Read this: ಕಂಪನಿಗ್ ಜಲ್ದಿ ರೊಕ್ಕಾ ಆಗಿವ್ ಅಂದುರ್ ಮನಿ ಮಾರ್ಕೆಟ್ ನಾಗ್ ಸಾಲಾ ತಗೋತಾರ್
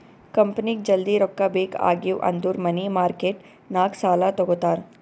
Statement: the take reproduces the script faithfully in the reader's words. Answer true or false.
false